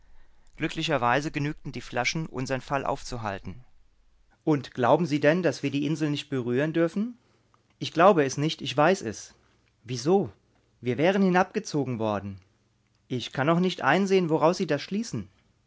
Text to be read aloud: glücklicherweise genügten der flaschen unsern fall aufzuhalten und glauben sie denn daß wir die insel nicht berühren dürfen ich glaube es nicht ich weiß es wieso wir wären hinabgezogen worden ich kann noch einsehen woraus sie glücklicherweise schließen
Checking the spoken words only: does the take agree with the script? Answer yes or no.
no